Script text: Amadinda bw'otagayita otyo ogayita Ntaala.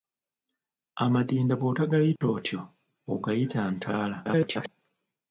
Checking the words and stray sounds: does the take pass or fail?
fail